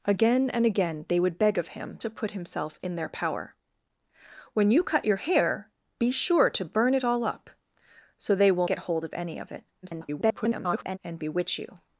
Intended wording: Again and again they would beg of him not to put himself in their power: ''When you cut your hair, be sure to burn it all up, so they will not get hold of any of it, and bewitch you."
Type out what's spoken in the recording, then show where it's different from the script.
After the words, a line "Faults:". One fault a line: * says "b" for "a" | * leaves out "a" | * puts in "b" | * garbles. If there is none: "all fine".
Again and again they would beg of him to put himself in their power: ''When you cut your hair, be sure to burn it all up, so they will get hold of any of it, [garbled] and bewitch you."
Faults:
* leaves out "not"
* leaves out "not"
* garbles